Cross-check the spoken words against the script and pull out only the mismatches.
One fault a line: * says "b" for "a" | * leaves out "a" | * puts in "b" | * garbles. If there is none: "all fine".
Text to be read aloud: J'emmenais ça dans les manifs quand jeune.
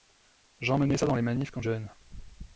all fine